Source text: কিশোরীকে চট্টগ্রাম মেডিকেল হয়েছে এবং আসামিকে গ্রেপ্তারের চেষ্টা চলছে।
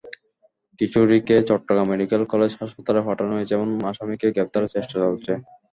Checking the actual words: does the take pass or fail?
fail